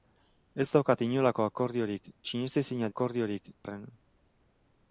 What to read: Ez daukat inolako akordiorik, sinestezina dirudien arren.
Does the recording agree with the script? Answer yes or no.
no